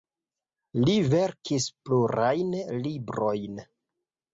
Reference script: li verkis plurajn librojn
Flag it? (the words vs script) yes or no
no